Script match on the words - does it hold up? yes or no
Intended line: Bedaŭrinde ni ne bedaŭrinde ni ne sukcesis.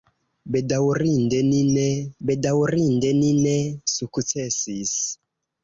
yes